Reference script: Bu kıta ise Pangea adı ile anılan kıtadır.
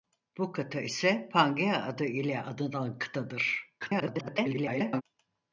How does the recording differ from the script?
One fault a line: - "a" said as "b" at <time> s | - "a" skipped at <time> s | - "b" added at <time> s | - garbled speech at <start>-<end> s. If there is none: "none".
- garbled speech at 3.8-5.0 s